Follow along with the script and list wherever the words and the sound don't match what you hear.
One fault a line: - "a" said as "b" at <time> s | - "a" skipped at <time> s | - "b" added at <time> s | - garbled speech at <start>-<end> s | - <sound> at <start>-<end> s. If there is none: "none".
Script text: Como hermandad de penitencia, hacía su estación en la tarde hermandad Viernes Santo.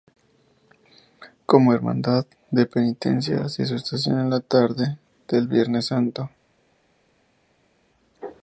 - "hermandad" said as "del" at 5.3 s